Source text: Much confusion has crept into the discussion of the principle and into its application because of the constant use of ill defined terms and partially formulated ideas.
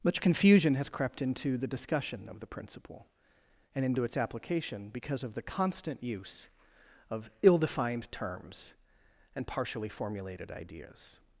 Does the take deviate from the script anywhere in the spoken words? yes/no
no